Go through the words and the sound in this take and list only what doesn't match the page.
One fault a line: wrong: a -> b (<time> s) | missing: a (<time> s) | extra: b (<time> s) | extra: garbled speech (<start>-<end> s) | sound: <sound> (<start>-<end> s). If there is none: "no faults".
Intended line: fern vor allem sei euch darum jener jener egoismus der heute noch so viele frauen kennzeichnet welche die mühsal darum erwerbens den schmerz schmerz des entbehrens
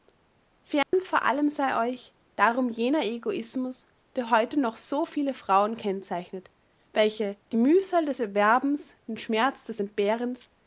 sound: dropout (0.8-0.9 s)
missing: jener (3.0 s)
wrong: darum -> des (8.1 s)
missing: schmerz (9.6 s)